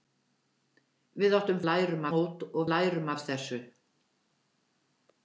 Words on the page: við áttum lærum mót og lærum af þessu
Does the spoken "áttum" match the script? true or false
true